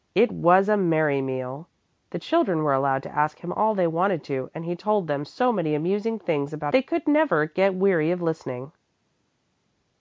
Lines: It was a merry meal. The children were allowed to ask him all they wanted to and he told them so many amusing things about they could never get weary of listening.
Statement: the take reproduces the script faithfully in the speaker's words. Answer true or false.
true